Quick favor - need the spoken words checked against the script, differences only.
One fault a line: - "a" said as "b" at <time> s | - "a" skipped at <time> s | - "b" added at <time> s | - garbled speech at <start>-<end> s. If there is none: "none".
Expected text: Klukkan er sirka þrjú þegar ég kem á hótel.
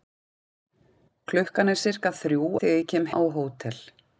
none